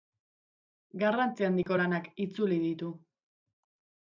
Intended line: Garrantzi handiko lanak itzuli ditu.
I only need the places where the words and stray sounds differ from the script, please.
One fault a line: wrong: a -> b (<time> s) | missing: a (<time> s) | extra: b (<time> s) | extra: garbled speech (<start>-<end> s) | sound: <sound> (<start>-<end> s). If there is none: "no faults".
sound: dropout (1.6-1.7 s)